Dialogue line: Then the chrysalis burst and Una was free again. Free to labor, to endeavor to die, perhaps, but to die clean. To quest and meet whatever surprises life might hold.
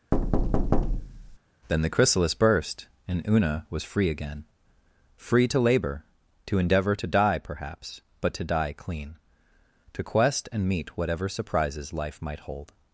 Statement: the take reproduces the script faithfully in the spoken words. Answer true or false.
true